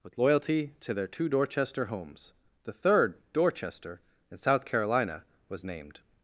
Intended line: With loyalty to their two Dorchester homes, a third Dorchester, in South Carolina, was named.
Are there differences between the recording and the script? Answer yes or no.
yes